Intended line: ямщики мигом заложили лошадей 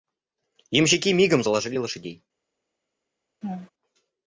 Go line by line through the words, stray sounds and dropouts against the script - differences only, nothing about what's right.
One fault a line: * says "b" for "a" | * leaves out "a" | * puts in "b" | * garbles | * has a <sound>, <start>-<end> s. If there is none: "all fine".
* has a laugh, 3.4-3.7 s